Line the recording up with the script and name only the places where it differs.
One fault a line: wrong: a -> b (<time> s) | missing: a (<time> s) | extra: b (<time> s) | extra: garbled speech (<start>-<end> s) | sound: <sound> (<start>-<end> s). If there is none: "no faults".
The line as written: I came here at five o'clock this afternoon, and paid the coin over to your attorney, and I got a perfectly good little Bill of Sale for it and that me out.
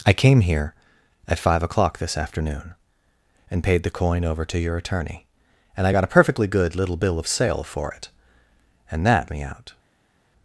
no faults